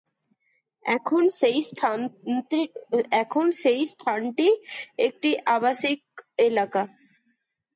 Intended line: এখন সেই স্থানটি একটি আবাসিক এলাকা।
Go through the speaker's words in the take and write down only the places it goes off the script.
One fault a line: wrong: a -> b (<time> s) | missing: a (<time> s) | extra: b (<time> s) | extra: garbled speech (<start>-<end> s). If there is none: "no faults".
no faults